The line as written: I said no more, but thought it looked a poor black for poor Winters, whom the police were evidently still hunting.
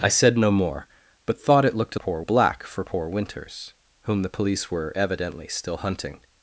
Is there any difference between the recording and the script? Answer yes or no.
no